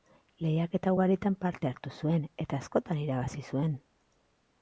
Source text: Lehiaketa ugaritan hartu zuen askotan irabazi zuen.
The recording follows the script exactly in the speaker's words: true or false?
false